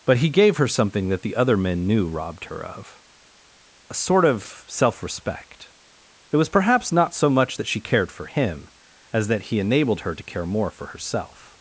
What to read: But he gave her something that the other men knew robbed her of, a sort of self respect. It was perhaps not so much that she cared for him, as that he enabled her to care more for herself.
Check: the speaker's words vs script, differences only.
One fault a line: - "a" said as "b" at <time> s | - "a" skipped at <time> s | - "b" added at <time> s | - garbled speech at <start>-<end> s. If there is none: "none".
none